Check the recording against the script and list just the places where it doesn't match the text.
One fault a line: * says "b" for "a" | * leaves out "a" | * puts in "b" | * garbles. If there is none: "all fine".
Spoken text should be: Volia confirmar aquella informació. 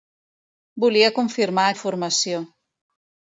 * leaves out "aquella"